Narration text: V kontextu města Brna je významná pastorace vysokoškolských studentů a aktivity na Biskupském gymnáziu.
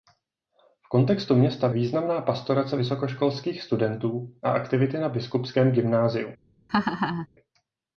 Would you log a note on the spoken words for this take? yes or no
yes